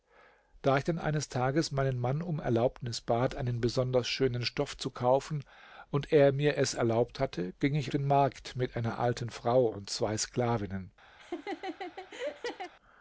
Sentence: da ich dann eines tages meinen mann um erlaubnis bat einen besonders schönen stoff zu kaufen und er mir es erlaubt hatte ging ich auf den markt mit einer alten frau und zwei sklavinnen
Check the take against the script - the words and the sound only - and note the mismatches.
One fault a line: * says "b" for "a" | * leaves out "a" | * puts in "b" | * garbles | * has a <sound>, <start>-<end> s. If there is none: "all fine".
* leaves out "auf"
* has a laugh, 11.2-12.7 s